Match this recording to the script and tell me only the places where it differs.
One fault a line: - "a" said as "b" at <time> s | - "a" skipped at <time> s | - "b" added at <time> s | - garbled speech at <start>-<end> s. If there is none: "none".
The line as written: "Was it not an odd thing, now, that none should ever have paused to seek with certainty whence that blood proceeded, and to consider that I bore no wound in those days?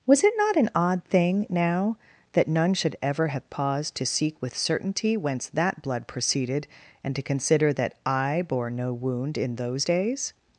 none